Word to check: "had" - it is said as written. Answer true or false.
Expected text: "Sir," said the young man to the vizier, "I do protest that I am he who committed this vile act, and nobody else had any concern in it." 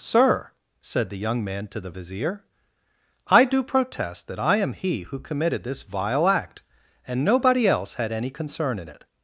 true